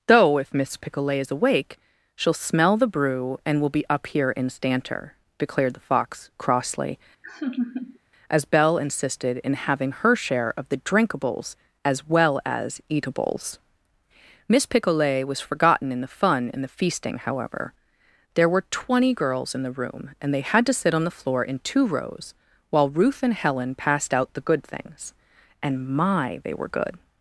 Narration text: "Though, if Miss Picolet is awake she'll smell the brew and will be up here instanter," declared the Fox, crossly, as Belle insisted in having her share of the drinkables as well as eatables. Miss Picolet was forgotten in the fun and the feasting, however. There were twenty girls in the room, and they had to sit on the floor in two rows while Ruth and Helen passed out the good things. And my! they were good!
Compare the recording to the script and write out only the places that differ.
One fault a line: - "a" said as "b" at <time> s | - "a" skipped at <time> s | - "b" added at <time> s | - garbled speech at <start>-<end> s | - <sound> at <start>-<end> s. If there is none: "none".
- laugh at 7.2-8.0 s